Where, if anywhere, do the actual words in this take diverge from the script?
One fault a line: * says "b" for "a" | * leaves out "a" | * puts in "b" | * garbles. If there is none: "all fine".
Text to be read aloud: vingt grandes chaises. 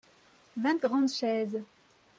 all fine